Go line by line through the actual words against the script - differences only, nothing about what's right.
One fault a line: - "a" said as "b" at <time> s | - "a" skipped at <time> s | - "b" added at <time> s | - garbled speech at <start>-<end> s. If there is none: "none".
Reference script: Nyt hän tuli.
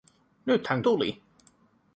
none